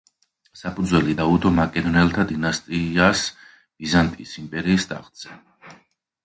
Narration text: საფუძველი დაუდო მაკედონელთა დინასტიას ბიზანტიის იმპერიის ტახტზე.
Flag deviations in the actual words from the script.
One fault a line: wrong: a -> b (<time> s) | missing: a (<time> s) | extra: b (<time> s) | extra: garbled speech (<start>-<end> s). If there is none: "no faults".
no faults